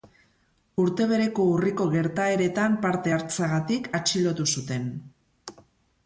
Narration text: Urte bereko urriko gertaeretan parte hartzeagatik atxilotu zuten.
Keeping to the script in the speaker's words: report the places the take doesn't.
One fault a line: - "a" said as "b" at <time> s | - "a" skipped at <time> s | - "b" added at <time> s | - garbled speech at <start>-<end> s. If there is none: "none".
none